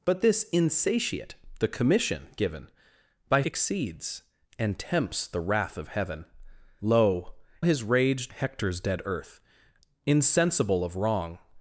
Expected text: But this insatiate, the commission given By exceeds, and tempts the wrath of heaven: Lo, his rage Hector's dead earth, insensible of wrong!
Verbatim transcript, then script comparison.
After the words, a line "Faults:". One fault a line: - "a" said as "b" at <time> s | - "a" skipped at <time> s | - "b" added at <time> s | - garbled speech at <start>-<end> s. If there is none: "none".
But this insatiate, the commission given By exceeds, and tempts the wrath of heaven: Lo, his rage Hector's dead earth, insensible of wrong!
Faults:
none